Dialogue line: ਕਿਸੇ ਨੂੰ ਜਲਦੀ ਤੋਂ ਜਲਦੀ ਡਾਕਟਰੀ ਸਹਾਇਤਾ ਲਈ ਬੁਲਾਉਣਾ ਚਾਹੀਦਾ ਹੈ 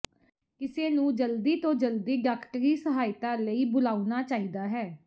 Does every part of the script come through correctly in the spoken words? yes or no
yes